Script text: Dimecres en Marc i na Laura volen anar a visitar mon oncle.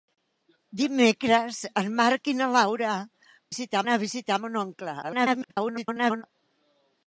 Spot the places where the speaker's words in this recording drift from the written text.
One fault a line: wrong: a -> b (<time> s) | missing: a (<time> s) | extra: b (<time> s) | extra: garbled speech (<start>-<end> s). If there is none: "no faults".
wrong: volen -> visitar (3.5 s)
extra: garbled speech (5.0-6.2 s)